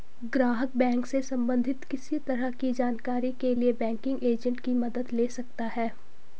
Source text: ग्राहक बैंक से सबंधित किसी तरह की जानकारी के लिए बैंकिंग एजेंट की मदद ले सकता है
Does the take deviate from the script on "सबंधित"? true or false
false